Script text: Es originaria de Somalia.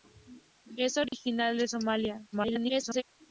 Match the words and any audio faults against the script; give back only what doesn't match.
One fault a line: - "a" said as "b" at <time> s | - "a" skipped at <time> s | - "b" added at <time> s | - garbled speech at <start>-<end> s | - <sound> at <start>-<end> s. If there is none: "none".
- dropout at 1.1-1.1 s
- garbled speech at 2.3-3.0 s